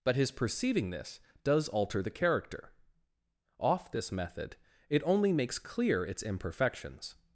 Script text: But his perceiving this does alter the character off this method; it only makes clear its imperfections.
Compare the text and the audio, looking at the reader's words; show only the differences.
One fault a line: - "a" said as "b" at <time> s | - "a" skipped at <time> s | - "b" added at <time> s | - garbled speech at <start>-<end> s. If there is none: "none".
none